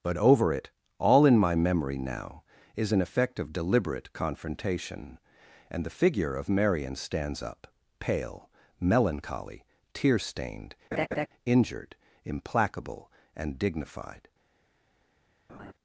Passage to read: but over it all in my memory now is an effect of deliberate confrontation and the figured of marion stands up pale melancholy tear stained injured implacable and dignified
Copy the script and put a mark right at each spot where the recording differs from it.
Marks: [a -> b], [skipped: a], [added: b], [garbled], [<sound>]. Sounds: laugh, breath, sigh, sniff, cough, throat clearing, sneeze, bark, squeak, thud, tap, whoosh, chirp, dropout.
but over it all in my memory now is an effect of deliberate confrontation and the [figured -> figure] of marion stands up pale melancholy tear stained [laugh] injured implacable and dignified [laugh]